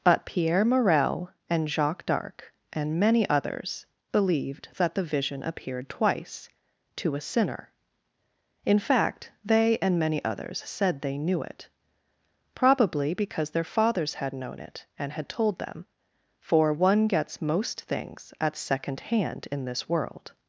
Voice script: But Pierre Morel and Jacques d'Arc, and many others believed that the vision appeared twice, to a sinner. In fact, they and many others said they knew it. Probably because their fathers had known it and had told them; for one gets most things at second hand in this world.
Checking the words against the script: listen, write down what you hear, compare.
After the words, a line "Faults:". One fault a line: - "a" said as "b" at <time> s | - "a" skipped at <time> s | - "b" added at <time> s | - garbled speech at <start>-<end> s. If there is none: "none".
But Pierre Morel and Jacques d'Arc, and many others believed that the vision appeared twice, to a sinner. In fact, they and many others said they knew it. Probably because their fathers had known it and had told them; for one gets most things at second hand in this world.
Faults:
none